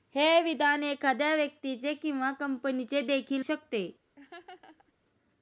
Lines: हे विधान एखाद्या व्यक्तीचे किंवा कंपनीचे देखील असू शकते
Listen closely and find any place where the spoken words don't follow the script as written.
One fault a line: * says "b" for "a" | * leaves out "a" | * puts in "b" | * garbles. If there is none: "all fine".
* leaves out "असू"